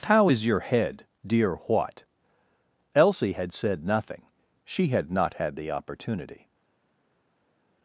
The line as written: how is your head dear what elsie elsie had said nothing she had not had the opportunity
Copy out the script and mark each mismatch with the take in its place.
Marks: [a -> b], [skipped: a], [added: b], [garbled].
how is your head dear what elsie [skipped: elsie] had said nothing she had not had the opportunity